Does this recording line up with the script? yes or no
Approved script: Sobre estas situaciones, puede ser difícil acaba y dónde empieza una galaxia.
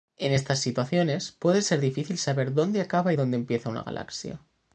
no